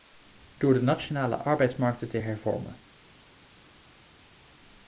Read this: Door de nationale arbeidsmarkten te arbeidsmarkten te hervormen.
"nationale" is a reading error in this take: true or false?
false